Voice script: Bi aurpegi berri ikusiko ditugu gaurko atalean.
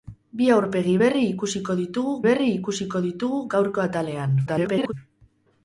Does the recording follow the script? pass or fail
fail